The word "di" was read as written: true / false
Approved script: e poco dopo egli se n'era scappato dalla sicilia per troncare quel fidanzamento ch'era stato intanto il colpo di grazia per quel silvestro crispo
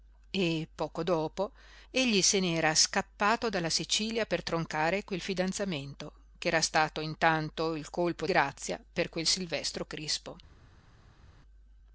false